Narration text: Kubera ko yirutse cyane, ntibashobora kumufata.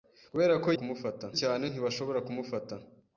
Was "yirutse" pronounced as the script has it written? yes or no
no